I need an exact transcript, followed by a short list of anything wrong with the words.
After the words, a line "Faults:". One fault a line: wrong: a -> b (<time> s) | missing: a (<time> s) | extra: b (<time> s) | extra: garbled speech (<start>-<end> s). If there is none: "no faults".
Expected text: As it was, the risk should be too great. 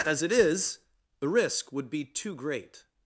As it is, the risk would be too great.
Faults:
wrong: was -> is (0.3 s)
wrong: should -> would (1.7 s)